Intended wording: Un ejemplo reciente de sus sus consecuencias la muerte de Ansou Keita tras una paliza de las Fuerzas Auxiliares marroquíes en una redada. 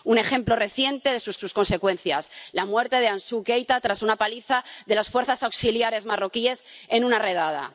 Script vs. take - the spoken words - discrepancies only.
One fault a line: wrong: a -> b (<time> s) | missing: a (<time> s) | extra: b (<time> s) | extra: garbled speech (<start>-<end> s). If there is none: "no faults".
no faults